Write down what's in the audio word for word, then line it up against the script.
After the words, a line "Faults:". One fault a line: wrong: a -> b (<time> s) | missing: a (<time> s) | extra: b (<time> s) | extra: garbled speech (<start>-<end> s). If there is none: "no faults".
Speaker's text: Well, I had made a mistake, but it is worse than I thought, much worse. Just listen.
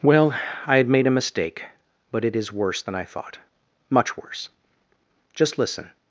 Well, I had made a mistake, but it is worse than I thought, much worse. Just listen.
Faults:
no faults